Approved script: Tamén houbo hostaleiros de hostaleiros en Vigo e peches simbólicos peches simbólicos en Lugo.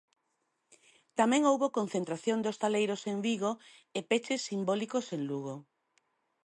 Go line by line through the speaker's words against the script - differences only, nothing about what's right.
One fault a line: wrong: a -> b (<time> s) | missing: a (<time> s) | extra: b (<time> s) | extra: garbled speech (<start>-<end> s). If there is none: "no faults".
wrong: hostaleiros -> concentración (1.8 s)
missing: peches simbólicos (5.1 s)